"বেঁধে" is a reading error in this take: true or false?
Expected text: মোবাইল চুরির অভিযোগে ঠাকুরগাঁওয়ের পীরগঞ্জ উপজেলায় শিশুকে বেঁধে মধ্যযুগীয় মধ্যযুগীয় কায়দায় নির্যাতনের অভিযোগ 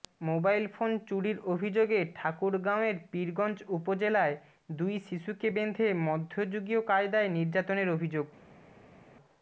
false